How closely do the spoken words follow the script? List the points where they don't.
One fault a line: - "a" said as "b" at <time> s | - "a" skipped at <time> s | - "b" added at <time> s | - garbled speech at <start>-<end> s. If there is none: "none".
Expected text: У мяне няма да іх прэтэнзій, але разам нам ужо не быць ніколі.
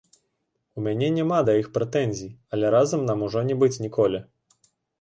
none